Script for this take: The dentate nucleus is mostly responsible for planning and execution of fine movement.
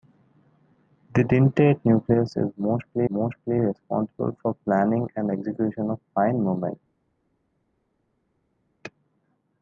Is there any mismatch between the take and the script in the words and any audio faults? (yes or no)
yes